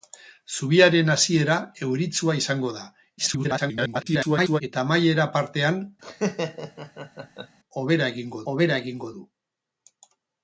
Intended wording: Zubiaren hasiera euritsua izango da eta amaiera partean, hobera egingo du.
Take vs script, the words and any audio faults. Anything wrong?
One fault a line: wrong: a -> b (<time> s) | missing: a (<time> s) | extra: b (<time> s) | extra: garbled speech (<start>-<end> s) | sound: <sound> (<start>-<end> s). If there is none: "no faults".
extra: garbled speech (3.2-4.6 s)
sound: laugh (6.0-7.6 s)
extra: hobera egingo (8.5 s)